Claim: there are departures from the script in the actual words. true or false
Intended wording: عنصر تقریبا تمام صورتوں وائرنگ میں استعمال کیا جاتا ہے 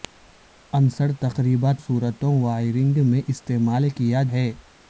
true